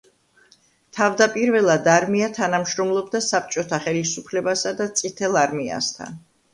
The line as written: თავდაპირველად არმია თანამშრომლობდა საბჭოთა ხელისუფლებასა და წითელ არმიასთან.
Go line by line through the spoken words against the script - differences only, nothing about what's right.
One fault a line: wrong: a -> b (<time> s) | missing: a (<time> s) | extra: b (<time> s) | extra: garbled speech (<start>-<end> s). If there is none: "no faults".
no faults